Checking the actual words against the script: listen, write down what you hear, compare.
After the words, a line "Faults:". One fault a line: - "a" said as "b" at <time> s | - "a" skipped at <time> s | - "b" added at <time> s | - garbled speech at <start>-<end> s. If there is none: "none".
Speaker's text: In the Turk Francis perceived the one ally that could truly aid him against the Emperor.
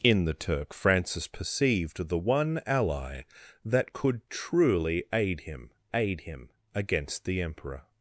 In the Turk Francis perceived the one ally that could truly aid him aid him against the Emperor.
Faults:
- "aid him" added at 5.9 s